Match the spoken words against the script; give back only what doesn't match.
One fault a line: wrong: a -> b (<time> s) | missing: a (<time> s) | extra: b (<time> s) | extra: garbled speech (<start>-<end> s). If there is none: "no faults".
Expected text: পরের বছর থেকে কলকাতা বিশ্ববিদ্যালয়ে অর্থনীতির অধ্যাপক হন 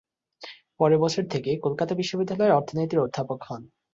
no faults